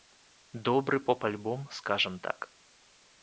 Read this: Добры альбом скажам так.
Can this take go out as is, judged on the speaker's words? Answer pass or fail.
fail